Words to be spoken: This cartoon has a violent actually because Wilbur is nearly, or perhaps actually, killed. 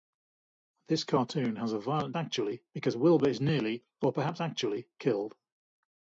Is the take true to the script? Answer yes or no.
yes